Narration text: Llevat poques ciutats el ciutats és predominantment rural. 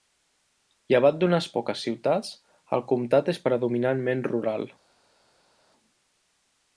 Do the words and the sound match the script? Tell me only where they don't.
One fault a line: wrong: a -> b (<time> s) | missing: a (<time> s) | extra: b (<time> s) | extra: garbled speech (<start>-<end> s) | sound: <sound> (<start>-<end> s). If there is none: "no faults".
extra: d'unes (1.2 s)
wrong: ciutats -> comtat (2.9 s)